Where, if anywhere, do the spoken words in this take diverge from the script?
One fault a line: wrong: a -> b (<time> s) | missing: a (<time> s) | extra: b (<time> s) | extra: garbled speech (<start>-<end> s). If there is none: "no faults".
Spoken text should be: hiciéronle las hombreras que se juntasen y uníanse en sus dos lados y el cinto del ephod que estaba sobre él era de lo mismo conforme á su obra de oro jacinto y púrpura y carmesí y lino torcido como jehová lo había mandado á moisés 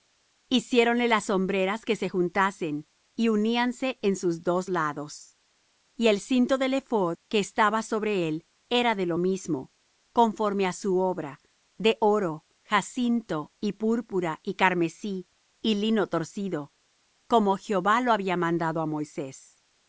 no faults